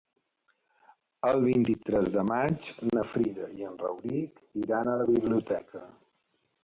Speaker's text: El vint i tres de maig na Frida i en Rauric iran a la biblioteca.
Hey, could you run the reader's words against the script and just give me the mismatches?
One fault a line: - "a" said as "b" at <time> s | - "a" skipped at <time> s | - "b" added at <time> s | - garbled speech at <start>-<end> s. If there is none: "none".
none